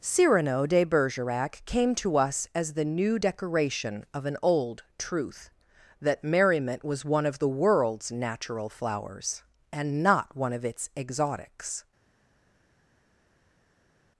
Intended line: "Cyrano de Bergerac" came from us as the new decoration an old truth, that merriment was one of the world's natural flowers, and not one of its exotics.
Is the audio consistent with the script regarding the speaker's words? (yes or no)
no